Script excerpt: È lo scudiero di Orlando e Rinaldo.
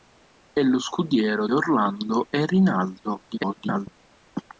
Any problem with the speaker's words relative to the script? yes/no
yes